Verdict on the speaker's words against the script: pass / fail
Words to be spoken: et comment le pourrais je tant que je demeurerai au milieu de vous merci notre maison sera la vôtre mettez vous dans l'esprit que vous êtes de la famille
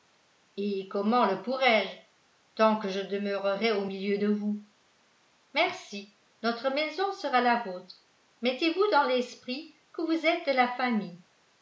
pass